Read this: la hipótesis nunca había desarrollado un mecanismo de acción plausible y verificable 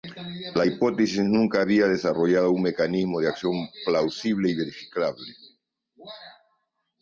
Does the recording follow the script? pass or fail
pass